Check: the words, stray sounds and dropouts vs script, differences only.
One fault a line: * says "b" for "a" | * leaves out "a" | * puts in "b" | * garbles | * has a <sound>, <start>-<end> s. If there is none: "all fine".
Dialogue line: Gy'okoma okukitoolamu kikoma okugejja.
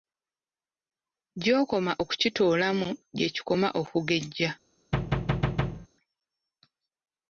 * puts in "gye"
* has a thud, 4.9-5.9 s